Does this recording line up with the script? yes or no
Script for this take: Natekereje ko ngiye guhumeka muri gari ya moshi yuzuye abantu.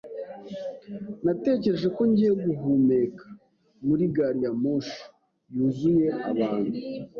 yes